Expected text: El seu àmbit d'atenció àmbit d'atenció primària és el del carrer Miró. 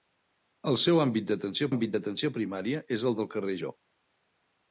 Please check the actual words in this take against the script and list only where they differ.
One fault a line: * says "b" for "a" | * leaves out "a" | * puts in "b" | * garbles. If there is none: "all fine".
all fine